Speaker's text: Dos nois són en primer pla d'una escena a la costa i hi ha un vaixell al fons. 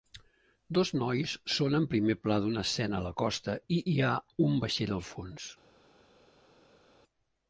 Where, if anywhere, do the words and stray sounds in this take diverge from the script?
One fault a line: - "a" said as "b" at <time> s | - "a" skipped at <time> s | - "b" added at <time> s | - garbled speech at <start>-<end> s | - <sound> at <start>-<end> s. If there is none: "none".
none